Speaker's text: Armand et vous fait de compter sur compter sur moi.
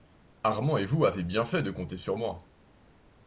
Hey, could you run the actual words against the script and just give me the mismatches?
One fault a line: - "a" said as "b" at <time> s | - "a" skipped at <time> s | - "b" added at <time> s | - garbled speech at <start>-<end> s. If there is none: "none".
- "avez bien" added at 1.1 s
- "compter sur" skipped at 2.2 s